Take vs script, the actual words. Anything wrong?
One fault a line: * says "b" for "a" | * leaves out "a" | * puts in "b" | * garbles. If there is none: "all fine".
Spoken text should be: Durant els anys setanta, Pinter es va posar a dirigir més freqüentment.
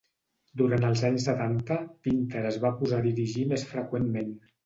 all fine